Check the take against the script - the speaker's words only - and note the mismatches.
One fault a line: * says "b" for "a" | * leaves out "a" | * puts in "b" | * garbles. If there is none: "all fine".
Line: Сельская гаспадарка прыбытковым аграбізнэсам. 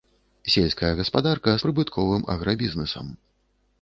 all fine